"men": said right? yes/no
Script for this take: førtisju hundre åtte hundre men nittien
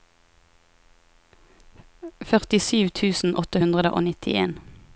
no